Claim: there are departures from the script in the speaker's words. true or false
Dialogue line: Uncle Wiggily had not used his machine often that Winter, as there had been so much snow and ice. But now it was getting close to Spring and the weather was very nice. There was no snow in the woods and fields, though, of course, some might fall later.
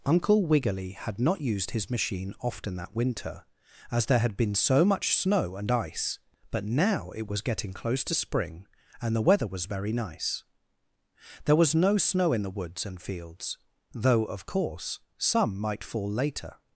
false